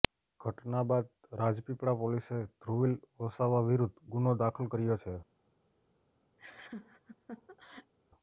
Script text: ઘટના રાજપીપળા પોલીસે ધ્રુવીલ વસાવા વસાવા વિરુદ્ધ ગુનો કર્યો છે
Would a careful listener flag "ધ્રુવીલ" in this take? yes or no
no